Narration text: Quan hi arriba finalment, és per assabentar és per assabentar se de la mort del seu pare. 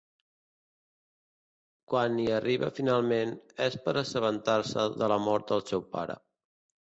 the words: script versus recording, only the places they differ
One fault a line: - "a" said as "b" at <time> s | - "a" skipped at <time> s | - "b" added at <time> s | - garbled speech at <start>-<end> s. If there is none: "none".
- "és per assabentar" skipped at 4.6 s